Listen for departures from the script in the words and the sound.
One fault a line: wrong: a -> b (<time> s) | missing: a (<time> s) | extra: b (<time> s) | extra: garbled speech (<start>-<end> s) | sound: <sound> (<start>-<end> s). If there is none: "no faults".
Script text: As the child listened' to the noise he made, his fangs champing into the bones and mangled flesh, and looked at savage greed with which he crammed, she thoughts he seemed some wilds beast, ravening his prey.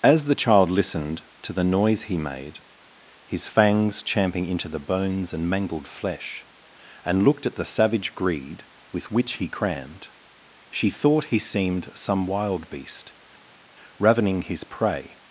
extra: the (7.5 s)
wrong: thoughts -> thought (10.9 s)
wrong: wilds -> wild (12.2 s)